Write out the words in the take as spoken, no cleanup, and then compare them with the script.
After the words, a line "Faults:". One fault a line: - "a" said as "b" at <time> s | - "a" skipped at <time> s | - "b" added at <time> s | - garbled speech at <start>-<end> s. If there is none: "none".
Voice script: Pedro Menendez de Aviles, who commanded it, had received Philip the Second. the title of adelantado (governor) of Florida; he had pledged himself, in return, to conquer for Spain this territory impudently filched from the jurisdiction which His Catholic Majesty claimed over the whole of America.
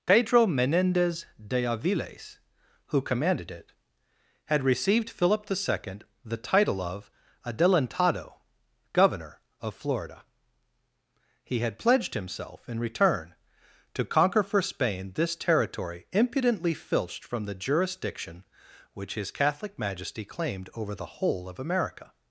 Pedro Menendez de Aviles, who commanded it, had received Philip the Second. the title of adelantado (governor) of Florida; he had pledged himself, in return, to conquer for Spain this territory impudently filched from the jurisdiction which His Catholic Majesty claimed over the whole of America.
Faults:
none